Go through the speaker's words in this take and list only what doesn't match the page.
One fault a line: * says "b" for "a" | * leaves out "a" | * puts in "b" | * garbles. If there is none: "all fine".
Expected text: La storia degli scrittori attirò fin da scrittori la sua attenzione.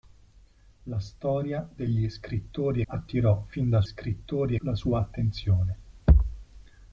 all fine